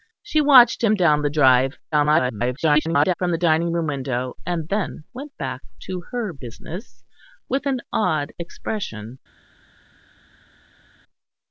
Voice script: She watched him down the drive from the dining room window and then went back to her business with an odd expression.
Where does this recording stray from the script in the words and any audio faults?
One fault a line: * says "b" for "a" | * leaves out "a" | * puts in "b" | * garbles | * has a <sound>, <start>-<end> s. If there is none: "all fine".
* garbles